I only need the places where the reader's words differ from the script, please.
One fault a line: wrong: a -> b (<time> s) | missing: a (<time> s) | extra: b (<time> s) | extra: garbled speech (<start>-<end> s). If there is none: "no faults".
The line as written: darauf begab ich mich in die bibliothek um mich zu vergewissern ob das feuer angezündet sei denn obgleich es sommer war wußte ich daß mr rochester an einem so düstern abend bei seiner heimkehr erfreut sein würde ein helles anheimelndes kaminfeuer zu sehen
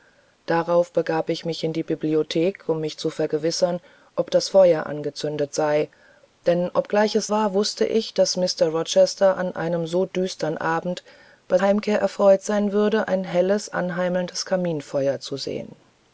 missing: sommer (7.3 s)
missing: seiner (11.6 s)